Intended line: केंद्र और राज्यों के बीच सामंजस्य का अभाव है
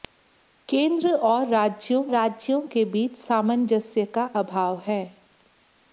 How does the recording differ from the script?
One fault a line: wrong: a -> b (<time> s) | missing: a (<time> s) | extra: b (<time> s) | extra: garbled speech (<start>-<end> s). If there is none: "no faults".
extra: राज्यों (2.1 s)